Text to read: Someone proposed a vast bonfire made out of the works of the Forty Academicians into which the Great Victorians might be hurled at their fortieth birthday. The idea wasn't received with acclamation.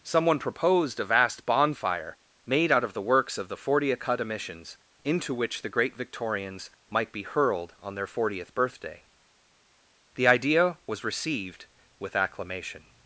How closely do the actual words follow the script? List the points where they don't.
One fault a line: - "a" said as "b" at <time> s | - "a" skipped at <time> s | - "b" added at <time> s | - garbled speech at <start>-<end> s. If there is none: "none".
- "at" said as "on" at 7.8 s
- "wasn't" said as "was" at 10.9 s